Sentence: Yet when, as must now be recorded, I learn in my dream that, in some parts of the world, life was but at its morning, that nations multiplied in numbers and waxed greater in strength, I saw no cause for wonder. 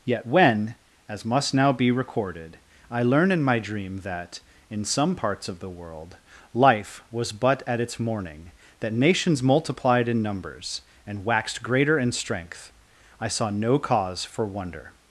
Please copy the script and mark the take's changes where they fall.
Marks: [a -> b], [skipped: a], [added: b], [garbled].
Yet when, as must now be recorded, I learn in my dream that, in some parts of the world, life was but at its morning, that nations multiplied in numbers and waxed greater in strength, I saw no cause for wonder.